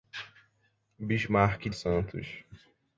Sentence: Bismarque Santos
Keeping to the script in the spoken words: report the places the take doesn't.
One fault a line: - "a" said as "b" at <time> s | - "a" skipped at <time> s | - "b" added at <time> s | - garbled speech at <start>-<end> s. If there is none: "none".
none